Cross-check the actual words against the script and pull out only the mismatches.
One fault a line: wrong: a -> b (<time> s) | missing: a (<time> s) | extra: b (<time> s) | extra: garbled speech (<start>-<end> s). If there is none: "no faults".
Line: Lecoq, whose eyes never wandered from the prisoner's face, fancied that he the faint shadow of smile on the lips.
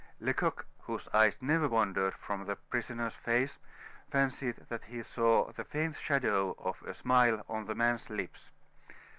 extra: saw (5.0 s)
extra: a (6.8 s)
extra: man's (7.7 s)